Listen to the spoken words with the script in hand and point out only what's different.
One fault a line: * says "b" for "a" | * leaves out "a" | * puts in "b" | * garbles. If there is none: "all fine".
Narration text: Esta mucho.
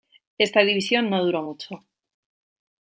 * puts in "división no duró"